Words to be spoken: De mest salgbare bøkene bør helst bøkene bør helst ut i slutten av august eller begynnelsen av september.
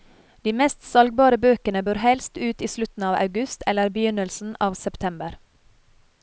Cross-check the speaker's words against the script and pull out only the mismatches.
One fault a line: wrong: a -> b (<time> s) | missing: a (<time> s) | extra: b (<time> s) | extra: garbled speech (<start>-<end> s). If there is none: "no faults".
missing: bøkene bør helst (2.4 s)